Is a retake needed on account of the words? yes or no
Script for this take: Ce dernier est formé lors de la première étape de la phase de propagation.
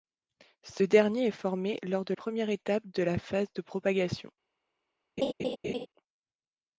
yes